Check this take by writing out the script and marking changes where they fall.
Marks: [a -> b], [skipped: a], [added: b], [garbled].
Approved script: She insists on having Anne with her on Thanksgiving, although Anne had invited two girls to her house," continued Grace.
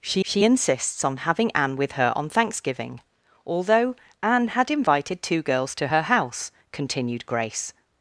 She [added: she] insists on having Anne with her on Thanksgiving, although Anne had invited two girls to her house," continued Grace.